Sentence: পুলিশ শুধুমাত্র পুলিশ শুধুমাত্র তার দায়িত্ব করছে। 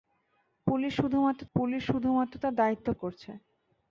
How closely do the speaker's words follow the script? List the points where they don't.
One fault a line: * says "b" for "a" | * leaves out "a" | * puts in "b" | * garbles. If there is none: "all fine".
all fine